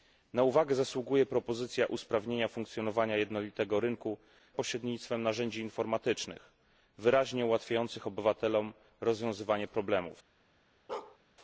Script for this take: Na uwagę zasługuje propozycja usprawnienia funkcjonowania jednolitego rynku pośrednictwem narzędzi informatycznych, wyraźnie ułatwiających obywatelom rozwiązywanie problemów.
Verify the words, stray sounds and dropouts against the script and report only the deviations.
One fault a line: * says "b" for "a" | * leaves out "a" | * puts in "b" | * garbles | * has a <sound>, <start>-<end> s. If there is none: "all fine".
* has a bark, 10.9-11.2 s